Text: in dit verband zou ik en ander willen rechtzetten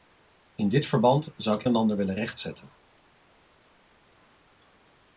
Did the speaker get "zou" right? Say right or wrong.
right